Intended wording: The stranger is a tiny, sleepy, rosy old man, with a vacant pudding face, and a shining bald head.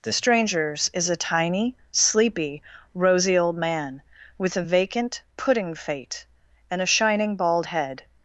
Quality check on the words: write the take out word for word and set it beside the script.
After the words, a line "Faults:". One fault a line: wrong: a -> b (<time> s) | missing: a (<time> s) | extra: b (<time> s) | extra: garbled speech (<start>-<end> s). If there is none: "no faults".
The strangers is a tiny, sleepy, rosy old man, with a vacant pudding fate, and a shining bald head.
Faults:
wrong: stranger -> strangers (0.1 s)
wrong: face -> fate (5.7 s)